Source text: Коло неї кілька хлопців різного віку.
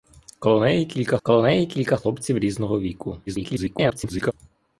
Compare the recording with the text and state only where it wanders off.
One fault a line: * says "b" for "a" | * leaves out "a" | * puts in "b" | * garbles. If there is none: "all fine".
* puts in "коло неї кілька"
* garbles